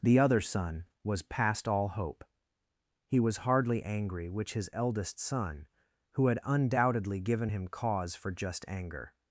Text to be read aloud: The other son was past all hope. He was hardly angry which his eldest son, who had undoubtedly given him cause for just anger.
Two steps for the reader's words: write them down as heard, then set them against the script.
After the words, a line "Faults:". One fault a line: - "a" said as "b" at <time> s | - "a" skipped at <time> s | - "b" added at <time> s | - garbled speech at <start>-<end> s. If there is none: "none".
The other son was past all hope. He was hardly angry which his eldest son, who had undoubtedly given him cause for just anger.
Faults:
none